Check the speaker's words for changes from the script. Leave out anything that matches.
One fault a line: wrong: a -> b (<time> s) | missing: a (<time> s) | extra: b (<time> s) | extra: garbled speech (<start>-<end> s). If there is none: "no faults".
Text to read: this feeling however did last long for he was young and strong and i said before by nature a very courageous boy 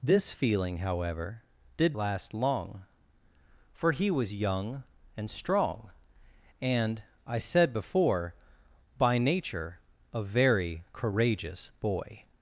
no faults